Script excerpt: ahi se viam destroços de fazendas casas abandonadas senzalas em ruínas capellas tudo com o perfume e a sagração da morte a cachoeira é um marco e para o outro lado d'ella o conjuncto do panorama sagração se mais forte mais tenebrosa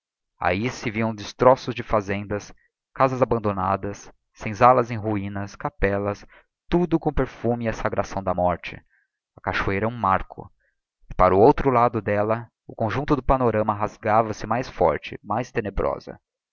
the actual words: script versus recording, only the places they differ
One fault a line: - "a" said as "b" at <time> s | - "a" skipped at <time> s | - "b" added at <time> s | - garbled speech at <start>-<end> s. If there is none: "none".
- "sagração" said as "rasgava" at 13.7 s